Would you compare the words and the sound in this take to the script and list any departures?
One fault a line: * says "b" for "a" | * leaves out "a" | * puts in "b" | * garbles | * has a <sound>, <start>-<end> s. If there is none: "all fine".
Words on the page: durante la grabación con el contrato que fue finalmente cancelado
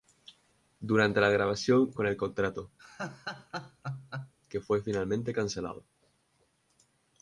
* has a laugh, 2.8-4.3 s